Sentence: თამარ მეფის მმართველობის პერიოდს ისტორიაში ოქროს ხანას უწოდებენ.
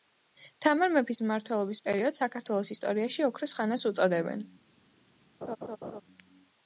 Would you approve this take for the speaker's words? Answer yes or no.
no